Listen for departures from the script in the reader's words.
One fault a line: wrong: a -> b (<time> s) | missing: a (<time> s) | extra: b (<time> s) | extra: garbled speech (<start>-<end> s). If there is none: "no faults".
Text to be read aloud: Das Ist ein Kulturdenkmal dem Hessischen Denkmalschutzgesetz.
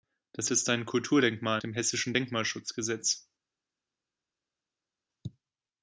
no faults